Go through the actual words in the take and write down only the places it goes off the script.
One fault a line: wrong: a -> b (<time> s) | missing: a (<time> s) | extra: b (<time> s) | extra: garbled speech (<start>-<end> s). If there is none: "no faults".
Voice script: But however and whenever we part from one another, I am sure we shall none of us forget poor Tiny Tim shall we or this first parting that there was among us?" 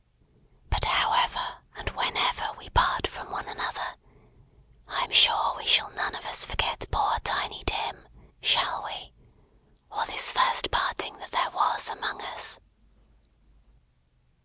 no faults